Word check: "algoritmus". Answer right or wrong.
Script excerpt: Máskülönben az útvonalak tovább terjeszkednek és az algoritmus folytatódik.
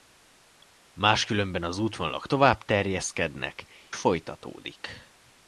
wrong